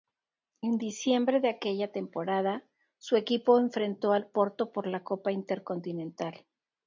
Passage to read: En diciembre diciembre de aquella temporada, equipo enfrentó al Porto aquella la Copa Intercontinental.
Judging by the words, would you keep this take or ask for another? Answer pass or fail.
fail